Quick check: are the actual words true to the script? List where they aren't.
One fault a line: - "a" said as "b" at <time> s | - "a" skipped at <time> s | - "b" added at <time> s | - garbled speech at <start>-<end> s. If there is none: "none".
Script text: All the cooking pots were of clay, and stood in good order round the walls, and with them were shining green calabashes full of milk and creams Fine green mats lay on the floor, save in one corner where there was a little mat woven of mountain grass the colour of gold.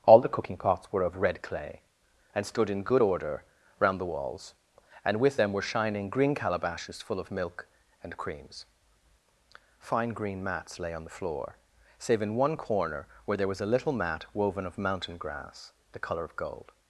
- "red" added at 1.2 s